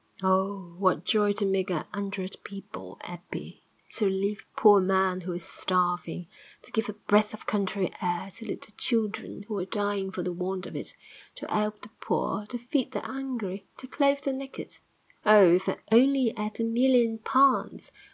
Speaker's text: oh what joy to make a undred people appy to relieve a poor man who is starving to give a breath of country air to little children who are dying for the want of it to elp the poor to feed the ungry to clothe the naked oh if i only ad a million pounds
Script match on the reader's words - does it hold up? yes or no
yes